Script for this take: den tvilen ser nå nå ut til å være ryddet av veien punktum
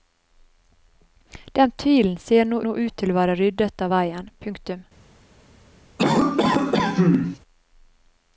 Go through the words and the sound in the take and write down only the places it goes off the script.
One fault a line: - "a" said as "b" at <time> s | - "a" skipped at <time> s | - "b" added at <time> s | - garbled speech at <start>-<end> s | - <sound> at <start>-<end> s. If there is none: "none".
- cough at 6.0-7.4 s